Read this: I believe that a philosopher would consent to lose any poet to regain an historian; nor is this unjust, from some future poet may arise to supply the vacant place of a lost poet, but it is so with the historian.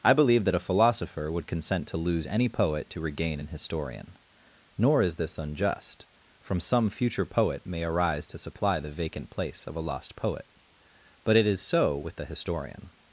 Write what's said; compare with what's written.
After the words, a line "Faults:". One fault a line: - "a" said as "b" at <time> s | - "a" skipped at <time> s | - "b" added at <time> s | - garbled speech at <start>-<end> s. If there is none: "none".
I believe that a philosopher would consent to lose any poet to regain an historian; nor is this unjust, from some future poet may arise to supply the vacant place of a lost poet, but it is so with the historian.
Faults:
none